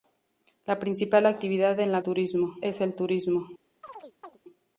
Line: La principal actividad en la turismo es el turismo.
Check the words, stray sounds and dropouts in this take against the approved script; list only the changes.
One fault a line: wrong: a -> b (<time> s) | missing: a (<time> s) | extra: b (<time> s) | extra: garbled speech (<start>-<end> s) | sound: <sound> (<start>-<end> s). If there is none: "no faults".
sound: chirp (3.8-4.4 s)